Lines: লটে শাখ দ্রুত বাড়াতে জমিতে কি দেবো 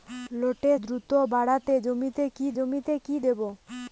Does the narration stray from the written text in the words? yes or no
yes